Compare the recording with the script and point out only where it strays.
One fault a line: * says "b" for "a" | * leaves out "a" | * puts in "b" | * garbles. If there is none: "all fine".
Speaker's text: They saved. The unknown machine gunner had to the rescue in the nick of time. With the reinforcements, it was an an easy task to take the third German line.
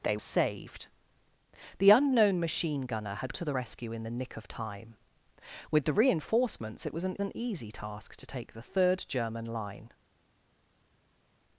all fine